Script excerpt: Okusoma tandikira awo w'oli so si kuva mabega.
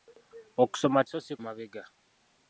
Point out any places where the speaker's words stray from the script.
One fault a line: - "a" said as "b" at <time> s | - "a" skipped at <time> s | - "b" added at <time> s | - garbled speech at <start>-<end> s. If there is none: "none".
- "tandikira awo w'oli" skipped at 1.0 s
- "kuva" skipped at 1.3 s